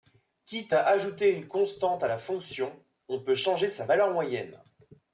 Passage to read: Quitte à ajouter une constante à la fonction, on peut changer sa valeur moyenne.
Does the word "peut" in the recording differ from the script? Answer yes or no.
no